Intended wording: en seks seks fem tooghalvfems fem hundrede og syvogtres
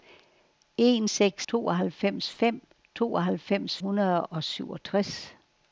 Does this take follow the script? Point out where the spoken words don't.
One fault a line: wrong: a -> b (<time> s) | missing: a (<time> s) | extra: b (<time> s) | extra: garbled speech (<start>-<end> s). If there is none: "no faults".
wrong: seks -> tooghalvfems (1.5 s)
missing: fem (3.8 s)